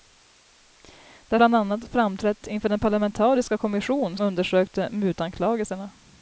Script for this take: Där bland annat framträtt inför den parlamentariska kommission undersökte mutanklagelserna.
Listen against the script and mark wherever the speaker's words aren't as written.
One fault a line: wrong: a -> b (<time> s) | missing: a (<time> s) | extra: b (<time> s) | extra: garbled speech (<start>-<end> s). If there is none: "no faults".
no faults